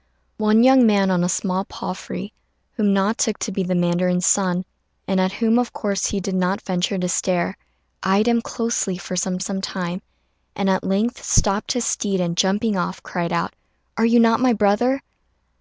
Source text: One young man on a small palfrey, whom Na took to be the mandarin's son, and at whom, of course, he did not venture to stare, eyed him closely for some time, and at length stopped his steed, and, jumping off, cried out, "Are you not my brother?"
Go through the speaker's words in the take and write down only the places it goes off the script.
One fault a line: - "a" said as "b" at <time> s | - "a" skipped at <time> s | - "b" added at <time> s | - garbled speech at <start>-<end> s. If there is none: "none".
- "some" added at 9.4 s